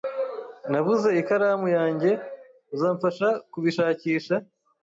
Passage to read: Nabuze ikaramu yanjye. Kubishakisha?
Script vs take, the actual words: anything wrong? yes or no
yes